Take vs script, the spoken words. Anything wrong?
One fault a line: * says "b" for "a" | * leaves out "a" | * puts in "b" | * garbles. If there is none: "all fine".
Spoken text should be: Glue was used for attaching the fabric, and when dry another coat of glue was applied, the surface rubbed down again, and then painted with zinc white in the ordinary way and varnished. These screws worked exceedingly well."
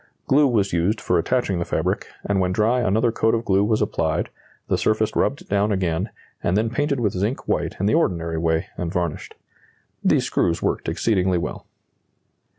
all fine